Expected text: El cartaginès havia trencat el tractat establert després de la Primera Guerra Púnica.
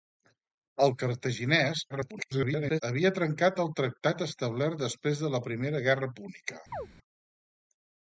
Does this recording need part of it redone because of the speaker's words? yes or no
yes